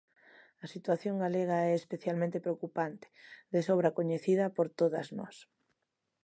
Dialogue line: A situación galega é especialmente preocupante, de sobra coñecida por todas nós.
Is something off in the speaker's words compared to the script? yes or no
no